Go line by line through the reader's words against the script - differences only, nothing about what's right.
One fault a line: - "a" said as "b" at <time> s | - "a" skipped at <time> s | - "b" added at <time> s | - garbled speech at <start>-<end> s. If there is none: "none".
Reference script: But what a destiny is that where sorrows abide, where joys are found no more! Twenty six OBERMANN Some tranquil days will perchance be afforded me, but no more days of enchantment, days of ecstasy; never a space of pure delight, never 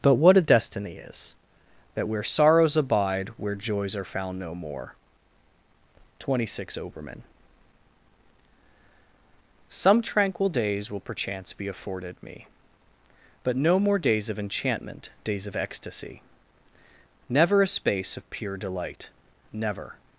none